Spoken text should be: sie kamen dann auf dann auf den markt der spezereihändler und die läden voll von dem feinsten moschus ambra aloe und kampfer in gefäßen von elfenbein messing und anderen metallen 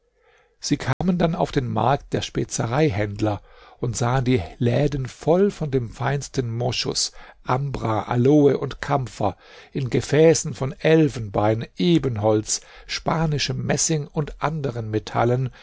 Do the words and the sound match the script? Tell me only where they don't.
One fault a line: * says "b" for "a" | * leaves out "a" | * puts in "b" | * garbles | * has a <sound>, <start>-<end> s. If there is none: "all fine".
* has a dropout, 0.9-1.0 s
* leaves out "dann auf"
* puts in "sahen"
* puts in "ebenholz spanischem"